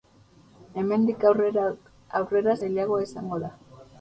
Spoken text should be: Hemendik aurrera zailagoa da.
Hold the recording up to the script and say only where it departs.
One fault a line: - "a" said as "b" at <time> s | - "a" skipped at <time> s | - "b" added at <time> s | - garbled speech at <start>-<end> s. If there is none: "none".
- "izango" added at 3.1 s